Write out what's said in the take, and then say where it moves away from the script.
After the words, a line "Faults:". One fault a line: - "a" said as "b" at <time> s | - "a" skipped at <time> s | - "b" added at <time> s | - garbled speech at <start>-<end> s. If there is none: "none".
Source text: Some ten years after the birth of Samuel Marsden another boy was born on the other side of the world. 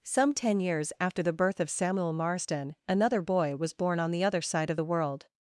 Some ten years after the birth of Samuel Marsden another boy was born on the other side of the world.
Faults:
none